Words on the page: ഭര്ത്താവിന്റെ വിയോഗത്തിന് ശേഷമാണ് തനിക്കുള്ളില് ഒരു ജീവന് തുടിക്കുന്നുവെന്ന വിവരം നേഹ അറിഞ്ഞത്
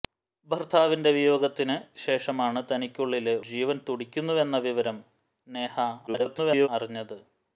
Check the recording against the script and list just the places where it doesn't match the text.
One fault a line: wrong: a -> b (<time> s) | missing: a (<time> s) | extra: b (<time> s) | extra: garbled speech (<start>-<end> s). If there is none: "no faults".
missing: ഒരു (3.4 s)
extra: garbled speech (6.1-6.7 s)